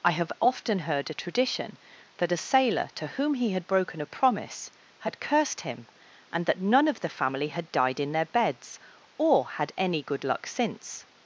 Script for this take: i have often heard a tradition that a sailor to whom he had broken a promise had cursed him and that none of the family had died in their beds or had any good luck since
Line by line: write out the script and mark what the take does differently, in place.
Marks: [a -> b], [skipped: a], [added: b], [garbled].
i have often heard a tradition that a sailor to whom he had broken a promise had cursed him and that none of the family had died in their beds or had any good luck since